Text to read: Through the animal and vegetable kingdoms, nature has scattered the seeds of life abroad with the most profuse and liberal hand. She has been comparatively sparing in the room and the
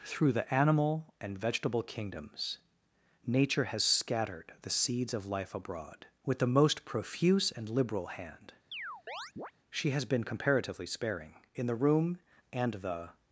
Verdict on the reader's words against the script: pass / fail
pass